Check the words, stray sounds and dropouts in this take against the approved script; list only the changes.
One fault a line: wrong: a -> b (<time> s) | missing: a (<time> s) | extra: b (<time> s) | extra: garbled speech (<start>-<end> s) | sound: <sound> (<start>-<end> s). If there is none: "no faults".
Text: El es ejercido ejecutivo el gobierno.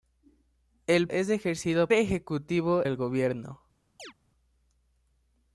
sound: chirp (4.0-4.1 s)